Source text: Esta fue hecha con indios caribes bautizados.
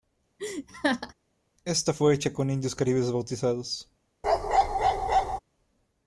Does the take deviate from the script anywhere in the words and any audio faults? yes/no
yes